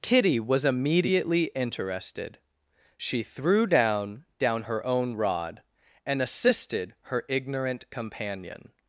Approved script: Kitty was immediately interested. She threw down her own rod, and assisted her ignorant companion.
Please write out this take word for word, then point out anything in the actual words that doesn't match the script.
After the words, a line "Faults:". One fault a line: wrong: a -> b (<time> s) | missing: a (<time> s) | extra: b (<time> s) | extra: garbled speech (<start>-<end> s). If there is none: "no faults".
Kitty was immediately interested. She threw down down her own rod, and assisted her ignorant companion.
Faults:
extra: down (4.4 s)